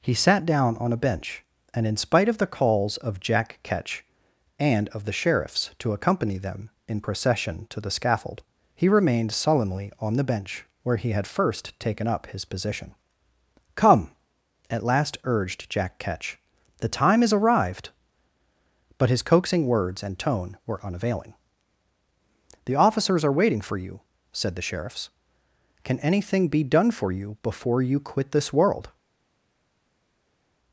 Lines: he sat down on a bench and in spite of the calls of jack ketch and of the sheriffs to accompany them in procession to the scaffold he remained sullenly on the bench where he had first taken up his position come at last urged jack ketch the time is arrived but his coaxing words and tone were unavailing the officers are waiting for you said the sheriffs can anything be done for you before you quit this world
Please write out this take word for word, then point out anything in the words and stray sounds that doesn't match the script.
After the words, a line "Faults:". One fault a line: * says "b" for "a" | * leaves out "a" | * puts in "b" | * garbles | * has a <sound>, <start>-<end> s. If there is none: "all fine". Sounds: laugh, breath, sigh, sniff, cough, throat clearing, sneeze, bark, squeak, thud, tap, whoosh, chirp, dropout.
he sat down on a bench and in spite of the calls of jack ketch and of the sheriffs to accompany them in procession to the scaffold he remained sullenly on the bench where he had first taken up his position come at last urged jack ketch the time is arrived but his coaxing words and tone were unavailing the officers are waiting for you said the sheriffs can anything be done for you before you quit this world
Faults:
all fine